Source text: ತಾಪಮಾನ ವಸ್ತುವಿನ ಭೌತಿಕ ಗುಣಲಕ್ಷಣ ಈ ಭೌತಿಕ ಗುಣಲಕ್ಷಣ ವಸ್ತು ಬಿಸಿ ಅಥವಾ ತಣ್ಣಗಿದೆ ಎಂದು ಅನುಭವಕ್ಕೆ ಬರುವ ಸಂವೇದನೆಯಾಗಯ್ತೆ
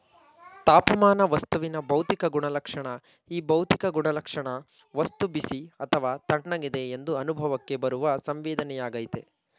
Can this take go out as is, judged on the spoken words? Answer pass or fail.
pass